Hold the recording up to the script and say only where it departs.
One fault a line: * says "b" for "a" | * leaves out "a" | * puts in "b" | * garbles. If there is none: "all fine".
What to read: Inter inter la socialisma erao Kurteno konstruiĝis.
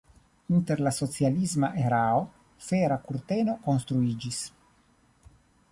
* leaves out "inter"
* puts in "Fera"